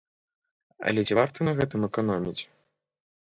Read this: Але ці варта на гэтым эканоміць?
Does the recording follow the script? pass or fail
pass